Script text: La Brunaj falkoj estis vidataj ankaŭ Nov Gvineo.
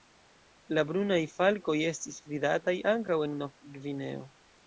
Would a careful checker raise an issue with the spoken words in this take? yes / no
yes